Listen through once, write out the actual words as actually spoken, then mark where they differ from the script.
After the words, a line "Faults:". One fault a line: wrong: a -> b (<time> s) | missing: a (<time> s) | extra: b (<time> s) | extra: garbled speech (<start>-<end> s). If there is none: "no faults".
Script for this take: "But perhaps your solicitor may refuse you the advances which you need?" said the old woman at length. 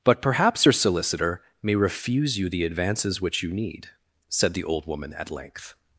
"But perhaps your solicitor may refuse you the advances which you need?" said the old woman at length.
Faults:
no faults